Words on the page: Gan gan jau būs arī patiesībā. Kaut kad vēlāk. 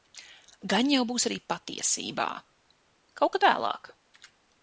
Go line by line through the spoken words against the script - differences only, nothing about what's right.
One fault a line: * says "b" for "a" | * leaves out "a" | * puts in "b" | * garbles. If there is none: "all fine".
* leaves out "gan"